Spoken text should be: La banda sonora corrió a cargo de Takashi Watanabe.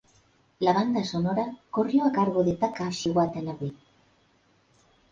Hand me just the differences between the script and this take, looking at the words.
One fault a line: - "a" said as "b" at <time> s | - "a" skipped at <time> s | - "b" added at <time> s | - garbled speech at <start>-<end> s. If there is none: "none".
none